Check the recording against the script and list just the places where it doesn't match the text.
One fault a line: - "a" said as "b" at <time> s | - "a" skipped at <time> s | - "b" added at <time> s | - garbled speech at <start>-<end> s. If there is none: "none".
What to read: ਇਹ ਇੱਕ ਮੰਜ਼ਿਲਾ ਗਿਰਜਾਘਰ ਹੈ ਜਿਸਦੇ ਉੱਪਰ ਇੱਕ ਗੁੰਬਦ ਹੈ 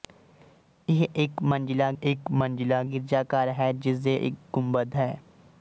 - "ਇੱਕ ਮੰਜ਼ਿਲਾ" added at 2.0 s
- "ਉੱਪਰ" skipped at 4.2 s